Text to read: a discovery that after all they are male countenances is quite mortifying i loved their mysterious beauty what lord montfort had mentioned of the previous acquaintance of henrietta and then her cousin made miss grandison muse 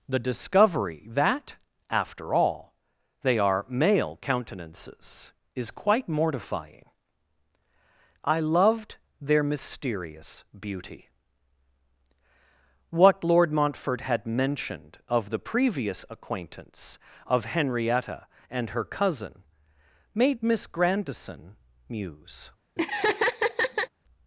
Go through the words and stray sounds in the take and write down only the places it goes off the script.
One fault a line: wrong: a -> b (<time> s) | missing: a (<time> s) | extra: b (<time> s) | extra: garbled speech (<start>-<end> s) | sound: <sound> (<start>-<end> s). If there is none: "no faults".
wrong: a -> the (0.1 s)
missing: then (18.7 s)
sound: laugh (22.8-23.9 s)